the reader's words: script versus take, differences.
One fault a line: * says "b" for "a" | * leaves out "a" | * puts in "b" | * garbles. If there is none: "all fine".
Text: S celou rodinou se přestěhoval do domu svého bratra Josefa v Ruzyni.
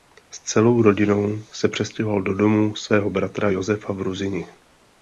all fine